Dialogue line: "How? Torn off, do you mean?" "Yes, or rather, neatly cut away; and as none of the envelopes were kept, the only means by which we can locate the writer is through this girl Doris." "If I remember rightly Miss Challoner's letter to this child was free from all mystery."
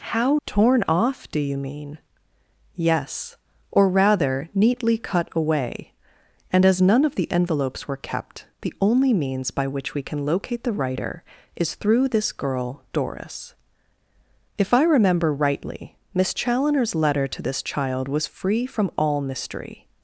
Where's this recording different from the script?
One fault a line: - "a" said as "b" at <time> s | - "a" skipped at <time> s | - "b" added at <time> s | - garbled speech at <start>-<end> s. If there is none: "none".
none